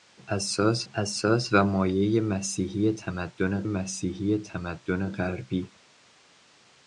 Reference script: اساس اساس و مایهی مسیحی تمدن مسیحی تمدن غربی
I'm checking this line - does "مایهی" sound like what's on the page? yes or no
yes